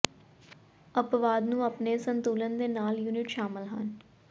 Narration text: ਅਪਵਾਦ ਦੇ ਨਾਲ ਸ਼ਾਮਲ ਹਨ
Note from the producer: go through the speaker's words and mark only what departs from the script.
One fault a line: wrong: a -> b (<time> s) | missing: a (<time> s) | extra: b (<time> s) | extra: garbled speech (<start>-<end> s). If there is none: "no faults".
extra: ਨੂੰ ਆਪਣੇ ਸੰਤੁਲਨ (1.4 s)
extra: ਯੂਨਿਟ (3.0 s)